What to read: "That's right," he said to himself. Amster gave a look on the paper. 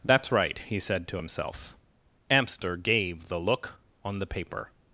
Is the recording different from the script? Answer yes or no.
yes